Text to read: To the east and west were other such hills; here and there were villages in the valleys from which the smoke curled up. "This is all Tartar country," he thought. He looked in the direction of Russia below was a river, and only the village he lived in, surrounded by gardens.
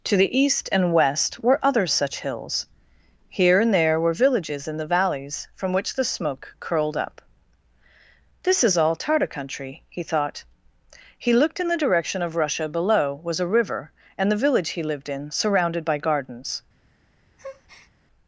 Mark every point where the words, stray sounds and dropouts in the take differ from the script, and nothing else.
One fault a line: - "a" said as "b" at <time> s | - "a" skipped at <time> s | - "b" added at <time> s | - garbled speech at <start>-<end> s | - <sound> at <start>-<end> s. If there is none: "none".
- "only" skipped at 14.3 s
- breath at 17.4-17.9 s